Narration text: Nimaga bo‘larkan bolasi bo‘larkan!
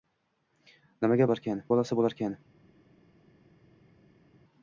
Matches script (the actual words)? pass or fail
pass